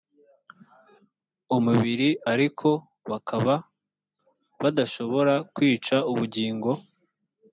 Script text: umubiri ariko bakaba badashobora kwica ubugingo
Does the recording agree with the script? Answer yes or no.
yes